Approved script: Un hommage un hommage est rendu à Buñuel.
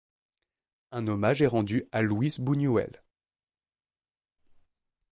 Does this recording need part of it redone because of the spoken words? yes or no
yes